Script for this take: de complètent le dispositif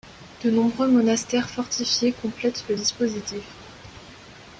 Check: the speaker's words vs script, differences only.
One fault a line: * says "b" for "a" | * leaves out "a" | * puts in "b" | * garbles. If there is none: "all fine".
* puts in "nombreux monastères fortifiés"